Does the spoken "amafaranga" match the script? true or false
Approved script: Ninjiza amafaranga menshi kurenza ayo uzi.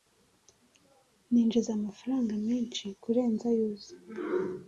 true